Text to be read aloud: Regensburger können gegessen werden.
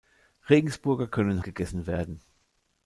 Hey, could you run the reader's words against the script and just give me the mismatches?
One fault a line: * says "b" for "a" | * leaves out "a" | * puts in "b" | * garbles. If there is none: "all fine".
all fine